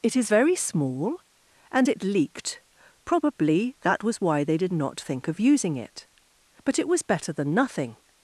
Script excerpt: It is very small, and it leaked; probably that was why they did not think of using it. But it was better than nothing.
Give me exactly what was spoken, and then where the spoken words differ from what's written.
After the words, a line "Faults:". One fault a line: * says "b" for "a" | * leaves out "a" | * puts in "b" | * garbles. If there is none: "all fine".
It is very small, and it leaked; probably that was why they did not think of using it. But it was better than nothing.
Faults:
all fine